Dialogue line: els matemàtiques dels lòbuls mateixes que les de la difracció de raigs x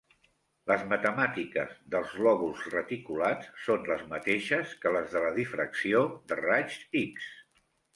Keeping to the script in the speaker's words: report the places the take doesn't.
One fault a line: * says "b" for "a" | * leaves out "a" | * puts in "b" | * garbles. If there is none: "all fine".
* says "les" for "els"
* puts in "reticulats són les"